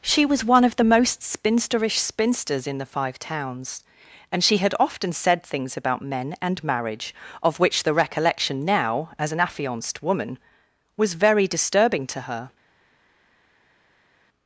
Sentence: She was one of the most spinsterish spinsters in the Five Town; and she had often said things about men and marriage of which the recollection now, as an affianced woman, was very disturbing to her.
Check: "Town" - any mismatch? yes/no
yes